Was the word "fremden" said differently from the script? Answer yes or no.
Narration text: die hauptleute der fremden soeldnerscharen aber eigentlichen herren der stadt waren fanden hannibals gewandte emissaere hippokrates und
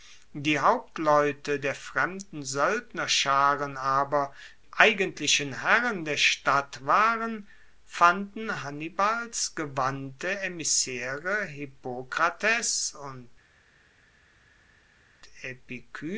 no